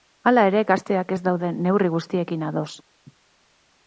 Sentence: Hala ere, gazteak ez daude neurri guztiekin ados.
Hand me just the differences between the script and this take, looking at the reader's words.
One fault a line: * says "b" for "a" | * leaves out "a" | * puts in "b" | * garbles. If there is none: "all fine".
all fine